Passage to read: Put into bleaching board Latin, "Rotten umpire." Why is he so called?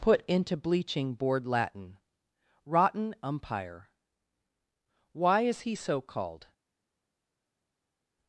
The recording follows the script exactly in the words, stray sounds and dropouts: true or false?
true